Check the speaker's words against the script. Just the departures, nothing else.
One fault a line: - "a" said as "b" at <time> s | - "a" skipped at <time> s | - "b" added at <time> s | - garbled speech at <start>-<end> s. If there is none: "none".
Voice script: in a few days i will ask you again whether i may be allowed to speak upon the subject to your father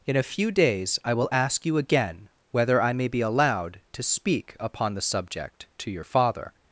none